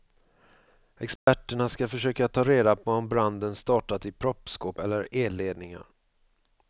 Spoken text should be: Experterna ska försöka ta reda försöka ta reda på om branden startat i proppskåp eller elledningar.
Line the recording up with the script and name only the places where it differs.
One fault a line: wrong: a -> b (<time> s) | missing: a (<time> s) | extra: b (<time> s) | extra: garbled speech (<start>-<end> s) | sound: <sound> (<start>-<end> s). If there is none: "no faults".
sound: dropout (1.2-1.3 s)
missing: försöka ta reda (2.8 s)